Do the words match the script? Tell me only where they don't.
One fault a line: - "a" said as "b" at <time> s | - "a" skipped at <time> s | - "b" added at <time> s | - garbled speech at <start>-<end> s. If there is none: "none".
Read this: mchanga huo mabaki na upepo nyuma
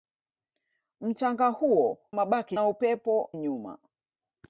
none